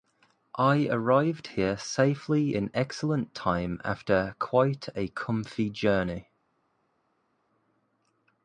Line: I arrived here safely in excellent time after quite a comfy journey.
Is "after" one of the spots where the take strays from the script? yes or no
no